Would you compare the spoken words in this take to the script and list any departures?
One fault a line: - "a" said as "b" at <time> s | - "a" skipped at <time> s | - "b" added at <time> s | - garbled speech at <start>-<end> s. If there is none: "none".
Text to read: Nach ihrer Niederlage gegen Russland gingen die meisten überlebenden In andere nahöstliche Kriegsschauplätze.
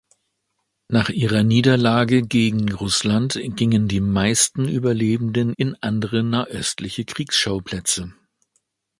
none